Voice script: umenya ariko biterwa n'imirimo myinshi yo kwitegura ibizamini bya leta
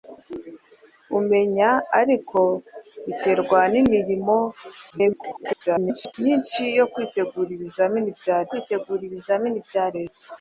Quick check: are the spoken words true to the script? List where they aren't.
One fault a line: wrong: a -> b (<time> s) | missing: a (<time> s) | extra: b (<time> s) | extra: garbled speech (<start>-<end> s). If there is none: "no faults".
extra: garbled speech (4.9-6.1 s)
extra: kwitegura ibizamini bya (8.5 s)